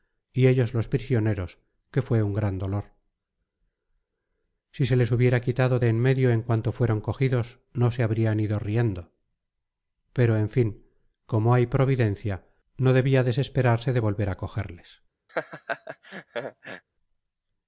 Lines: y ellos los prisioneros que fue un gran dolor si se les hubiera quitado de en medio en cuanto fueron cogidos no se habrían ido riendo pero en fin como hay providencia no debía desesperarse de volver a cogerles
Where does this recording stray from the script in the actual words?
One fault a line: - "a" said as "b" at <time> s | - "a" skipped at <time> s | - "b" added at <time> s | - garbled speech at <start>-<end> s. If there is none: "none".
none